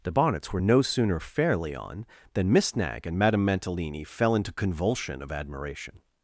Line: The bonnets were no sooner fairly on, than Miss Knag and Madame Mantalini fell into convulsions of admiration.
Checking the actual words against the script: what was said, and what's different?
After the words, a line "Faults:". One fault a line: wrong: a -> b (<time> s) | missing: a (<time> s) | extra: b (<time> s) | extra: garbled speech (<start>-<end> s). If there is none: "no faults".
The bonnets were no sooner fairly on, than Miss Knag and Madame Mantalini fell into convulsion of admiration.
Faults:
wrong: convulsions -> convulsion (4.5 s)